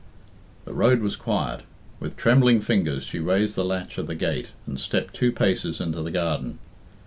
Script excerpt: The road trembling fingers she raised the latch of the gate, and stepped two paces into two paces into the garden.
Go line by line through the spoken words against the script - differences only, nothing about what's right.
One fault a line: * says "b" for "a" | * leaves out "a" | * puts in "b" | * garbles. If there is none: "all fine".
* puts in "was quiet With"
* leaves out "two paces into"